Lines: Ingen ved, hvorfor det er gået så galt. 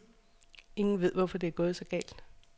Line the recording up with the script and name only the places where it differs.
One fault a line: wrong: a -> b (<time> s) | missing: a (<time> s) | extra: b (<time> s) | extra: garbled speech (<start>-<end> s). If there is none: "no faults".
no faults